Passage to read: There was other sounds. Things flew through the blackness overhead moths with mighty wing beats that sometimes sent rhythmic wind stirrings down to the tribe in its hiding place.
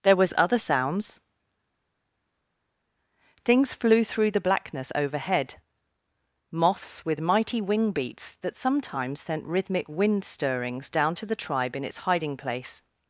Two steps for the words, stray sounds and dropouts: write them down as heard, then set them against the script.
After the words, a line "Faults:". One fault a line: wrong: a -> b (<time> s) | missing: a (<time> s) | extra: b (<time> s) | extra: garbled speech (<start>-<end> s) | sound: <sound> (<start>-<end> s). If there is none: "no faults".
There was other sounds. Things flew through the blackness overhead moths with mighty wing beats that sometimes sent rhythmic wind stirrings down to the tribe in its hiding place.
Faults:
no faults